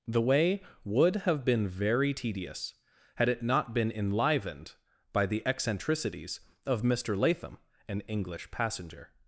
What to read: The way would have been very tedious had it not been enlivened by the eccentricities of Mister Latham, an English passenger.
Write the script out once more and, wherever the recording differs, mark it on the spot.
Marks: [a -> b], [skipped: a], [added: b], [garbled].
The way would have been very tedious had it not been enlivened by the eccentricities of Mister Latham, an English passenger.